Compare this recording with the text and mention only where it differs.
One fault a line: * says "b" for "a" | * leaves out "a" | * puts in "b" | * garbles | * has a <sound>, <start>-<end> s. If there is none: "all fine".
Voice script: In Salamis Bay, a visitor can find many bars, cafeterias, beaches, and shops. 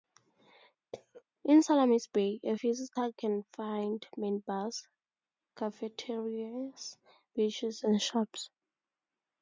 * has a cough, 0.9-1.2 s